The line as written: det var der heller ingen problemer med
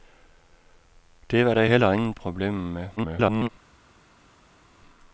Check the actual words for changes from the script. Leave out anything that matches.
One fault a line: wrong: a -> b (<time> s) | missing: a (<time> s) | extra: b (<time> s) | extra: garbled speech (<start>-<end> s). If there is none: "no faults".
extra: garbled speech (3.0-3.5 s)